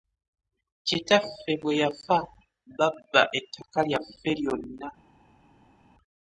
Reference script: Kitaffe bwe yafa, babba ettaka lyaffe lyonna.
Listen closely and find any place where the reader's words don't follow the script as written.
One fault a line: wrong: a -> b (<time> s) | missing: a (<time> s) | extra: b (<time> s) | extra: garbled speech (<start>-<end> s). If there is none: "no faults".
no faults